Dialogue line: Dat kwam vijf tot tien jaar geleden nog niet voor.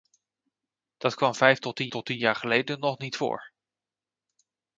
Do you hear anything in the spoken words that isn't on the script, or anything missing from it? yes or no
yes